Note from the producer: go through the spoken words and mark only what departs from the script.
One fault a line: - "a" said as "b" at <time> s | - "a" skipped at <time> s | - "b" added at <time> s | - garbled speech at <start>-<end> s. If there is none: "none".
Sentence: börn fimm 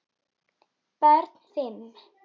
none